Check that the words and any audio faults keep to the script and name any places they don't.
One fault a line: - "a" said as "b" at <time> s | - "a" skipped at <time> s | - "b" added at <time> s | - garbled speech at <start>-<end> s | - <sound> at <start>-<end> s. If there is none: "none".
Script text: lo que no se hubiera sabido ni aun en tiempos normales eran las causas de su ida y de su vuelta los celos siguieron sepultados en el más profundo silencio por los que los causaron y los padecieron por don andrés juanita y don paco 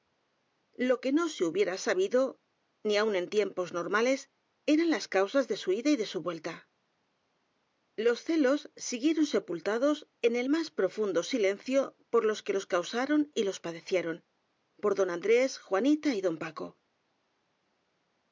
none